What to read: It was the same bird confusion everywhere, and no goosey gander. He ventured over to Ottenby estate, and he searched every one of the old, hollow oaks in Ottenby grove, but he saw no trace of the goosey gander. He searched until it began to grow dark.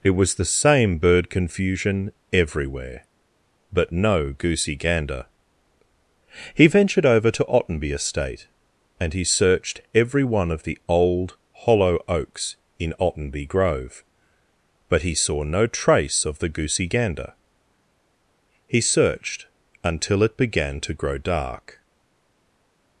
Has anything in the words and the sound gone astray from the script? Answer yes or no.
yes